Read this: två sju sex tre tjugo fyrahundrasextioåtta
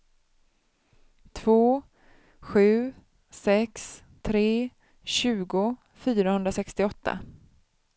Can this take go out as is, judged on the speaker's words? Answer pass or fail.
pass